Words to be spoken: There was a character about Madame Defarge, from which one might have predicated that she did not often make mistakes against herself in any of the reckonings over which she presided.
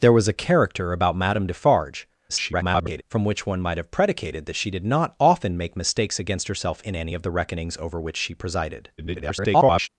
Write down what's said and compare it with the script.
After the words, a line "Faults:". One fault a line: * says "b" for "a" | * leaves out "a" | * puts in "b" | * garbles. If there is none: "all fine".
There was a character about Madame Defarge, [garbled] from which one might have predicated that she did not often make mistakes against herself in any of the reckonings over which she presided. [garbled]
Faults:
* garbles
* garbles